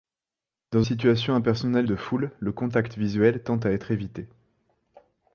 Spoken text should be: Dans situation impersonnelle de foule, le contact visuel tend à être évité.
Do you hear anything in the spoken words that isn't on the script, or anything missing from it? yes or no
no